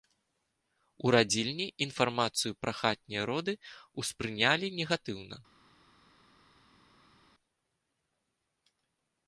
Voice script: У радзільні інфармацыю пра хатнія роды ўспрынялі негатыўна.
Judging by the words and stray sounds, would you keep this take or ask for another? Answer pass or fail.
pass